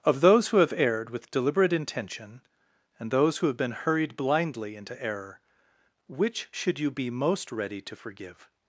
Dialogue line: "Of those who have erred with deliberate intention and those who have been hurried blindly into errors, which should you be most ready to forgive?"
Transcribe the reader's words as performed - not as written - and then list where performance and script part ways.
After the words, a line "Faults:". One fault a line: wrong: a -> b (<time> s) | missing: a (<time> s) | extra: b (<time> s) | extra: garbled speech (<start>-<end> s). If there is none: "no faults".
"Of those who have erred with deliberate intention and those who have been hurried blindly into error, which should you be most ready to forgive?"
Faults:
wrong: errors -> error (5.0 s)